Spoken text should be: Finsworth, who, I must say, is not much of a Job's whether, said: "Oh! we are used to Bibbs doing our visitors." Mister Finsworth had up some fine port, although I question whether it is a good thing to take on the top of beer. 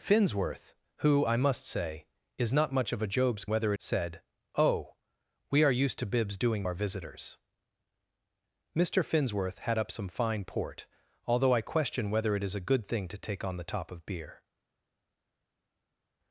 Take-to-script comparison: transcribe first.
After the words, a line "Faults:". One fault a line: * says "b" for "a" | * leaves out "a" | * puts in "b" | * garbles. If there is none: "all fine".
Finsworth, who, I must say, is not much of a Job's whether, said: "Oh! we are used to Bibbs doing our visitors." Mister Finsworth had up some fine port, although I question whether it is a good thing to take on the top of beer.
Faults:
all fine